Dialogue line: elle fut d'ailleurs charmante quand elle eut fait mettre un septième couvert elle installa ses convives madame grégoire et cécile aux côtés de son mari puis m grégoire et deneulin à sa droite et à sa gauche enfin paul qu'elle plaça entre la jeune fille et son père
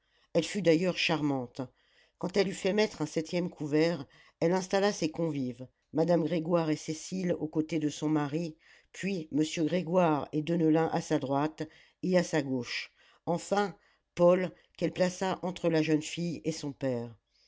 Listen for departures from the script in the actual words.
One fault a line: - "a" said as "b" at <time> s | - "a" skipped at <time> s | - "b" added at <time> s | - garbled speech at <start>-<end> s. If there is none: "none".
none